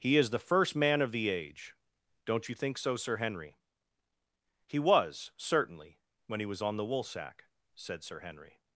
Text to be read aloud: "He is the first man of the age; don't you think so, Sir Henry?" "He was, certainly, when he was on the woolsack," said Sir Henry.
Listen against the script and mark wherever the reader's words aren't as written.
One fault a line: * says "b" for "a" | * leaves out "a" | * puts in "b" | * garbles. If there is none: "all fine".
all fine